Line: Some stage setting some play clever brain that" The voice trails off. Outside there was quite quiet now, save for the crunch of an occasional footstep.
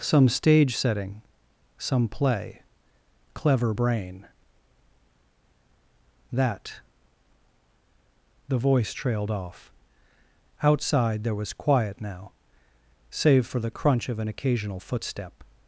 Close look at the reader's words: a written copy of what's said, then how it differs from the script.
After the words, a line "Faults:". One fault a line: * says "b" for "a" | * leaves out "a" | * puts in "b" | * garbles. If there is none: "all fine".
Some stage setting some play clever brain that" The voice trailed off. Outside there was quiet now, save for the crunch of an occasional footstep.
Faults:
* says "trailed" for "trails"
* leaves out "quite"